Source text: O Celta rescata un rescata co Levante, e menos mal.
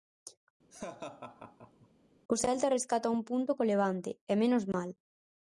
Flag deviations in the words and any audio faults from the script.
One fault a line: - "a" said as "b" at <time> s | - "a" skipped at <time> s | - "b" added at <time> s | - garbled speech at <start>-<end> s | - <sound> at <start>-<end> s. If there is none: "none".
- laugh at 0.7-1.9 s
- "rescata" said as "punto" at 3.3 s